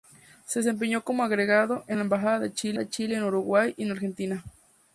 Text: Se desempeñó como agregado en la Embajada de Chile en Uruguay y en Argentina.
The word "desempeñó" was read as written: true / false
true